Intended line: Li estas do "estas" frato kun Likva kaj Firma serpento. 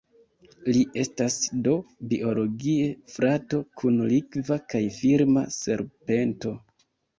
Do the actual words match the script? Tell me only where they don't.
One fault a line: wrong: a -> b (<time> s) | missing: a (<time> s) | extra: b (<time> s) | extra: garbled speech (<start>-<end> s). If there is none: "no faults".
wrong: estas -> biologie (2.1 s)